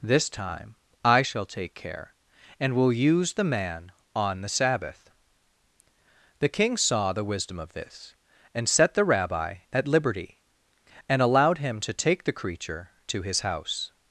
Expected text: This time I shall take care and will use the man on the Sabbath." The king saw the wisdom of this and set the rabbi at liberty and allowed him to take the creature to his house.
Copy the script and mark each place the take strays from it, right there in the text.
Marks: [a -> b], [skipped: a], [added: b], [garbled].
This time I shall take care and will use the man on the Sabbath." The king saw the wisdom of this and set the rabbi at liberty and allowed him to take the creature to his house.